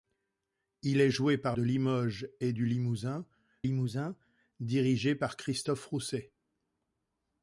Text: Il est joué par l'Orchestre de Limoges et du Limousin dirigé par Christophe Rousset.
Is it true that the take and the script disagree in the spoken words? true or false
true